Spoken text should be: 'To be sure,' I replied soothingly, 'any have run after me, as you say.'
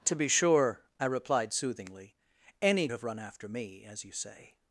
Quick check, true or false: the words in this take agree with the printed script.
true